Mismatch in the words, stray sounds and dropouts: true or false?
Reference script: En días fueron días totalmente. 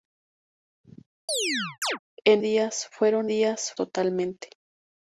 true